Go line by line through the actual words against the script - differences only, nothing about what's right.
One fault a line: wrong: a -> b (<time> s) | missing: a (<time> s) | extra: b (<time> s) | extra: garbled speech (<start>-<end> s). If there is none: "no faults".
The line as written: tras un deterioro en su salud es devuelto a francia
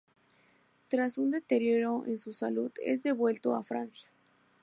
no faults